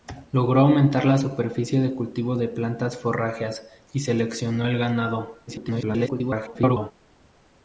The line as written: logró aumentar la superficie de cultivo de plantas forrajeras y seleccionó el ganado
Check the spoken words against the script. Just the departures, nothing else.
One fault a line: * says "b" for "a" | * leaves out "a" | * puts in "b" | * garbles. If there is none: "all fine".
* garbles